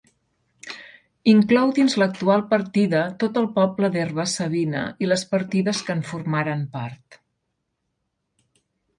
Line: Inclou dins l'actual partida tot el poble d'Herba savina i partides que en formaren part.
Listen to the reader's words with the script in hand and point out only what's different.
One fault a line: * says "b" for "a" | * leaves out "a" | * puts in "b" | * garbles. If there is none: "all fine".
* puts in "les"